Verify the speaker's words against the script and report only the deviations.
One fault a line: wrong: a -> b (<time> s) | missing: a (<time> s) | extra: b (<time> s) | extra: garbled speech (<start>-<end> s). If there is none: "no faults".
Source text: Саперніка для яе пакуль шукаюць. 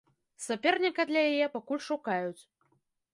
no faults